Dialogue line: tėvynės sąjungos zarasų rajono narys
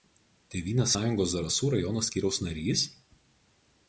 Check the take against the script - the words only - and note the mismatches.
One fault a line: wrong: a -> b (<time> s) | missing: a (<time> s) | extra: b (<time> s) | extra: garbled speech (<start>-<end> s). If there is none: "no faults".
extra: skyriaus (2.1 s)